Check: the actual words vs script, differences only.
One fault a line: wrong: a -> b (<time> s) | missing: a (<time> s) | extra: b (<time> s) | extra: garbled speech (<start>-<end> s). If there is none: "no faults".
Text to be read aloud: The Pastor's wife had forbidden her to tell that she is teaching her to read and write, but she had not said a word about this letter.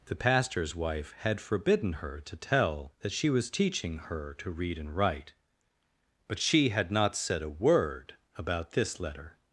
wrong: is -> was (3.3 s)